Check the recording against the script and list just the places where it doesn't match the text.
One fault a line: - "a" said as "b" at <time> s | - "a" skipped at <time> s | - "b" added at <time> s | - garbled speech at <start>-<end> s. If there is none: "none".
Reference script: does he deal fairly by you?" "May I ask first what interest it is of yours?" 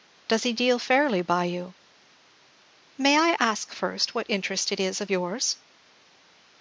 none